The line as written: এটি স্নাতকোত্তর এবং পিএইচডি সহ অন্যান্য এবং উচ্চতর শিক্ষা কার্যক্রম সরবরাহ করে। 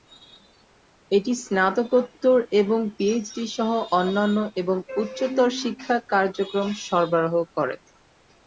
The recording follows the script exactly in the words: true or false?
true